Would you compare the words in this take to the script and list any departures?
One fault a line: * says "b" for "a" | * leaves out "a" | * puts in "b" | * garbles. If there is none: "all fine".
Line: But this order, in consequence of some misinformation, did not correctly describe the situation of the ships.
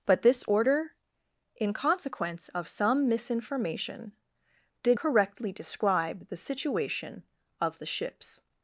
* leaves out "not"